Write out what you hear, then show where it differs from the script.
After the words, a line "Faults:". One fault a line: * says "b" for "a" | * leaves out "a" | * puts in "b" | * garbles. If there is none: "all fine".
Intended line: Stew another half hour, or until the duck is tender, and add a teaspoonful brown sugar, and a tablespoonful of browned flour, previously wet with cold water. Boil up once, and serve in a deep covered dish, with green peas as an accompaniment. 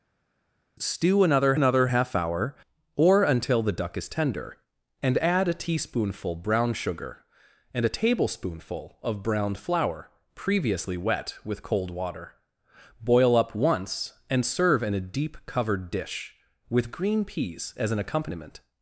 Stew another another half hour, or until the duck is tender, and add a teaspoonful brown sugar, and a tablespoonful of browned flour, previously wet with cold water. Boil up once, and serve in a deep covered dish, with green peas as an accompaniment.
Faults:
* puts in "another"